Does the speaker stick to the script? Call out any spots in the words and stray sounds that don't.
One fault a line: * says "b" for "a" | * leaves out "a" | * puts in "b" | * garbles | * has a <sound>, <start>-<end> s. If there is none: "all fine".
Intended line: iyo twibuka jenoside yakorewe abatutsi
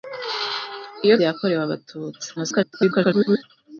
* leaves out "twibuka jenoside"
* garbles